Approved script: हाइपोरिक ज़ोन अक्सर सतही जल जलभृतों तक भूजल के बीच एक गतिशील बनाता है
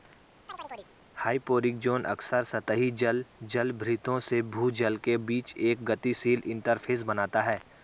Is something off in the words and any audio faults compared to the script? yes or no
yes